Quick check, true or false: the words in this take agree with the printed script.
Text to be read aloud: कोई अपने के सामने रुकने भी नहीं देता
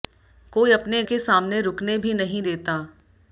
true